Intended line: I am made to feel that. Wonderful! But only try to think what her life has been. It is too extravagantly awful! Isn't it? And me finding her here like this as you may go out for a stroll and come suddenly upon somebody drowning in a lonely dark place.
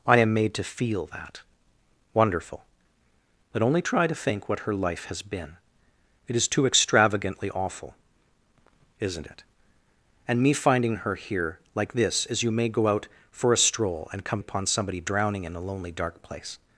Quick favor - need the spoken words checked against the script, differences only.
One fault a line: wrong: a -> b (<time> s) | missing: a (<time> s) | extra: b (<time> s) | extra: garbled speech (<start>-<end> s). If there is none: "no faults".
missing: suddenly (14.4 s)